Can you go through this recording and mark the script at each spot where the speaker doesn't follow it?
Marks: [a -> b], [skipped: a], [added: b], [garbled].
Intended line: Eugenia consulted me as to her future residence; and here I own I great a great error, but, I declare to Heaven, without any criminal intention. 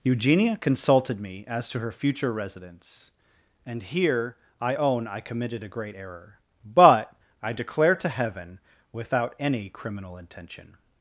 Eugenia consulted me as to her future residence; and here I own I [great -> committed] a great error, but, I declare to Heaven, without any criminal intention.